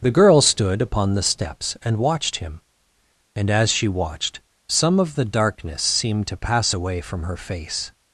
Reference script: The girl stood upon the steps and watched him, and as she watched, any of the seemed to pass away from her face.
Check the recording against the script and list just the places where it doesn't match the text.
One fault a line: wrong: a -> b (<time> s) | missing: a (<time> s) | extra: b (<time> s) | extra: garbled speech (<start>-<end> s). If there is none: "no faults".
wrong: any -> some (4.7 s)
extra: darkness (5.2 s)